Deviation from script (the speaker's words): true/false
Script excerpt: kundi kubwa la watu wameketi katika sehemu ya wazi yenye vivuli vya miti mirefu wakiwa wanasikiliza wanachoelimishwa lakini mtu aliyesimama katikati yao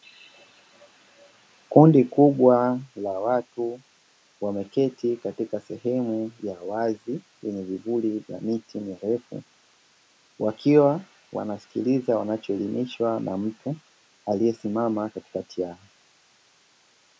true